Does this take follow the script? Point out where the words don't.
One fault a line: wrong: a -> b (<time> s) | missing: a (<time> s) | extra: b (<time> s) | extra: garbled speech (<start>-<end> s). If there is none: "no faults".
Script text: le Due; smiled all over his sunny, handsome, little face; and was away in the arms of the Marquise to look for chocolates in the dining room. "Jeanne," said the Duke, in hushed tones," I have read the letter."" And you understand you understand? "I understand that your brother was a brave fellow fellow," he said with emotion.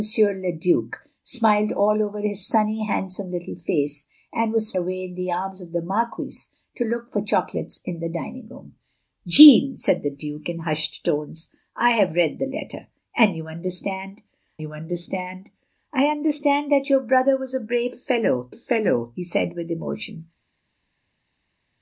no faults